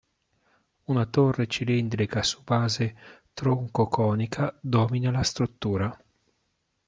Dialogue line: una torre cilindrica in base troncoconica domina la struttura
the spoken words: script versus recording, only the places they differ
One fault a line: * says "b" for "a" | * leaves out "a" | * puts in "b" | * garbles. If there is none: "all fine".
* says "su" for "in"